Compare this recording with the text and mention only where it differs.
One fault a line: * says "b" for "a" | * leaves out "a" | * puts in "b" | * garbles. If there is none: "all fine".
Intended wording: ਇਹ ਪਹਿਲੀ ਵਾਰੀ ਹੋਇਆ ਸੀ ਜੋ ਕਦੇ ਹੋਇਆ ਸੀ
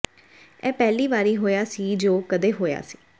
all fine